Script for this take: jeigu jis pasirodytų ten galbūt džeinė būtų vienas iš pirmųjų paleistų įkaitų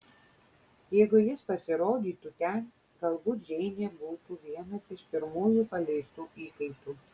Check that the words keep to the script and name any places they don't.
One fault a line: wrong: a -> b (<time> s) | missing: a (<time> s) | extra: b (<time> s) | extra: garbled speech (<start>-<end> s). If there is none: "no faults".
no faults